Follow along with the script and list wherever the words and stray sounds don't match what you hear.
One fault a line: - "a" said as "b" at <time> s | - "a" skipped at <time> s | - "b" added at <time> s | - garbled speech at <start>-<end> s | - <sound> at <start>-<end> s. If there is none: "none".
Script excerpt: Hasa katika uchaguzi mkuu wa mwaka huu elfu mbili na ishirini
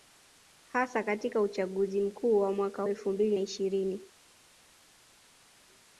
- "huu" skipped at 2.8 s
- "na" skipped at 3.4 s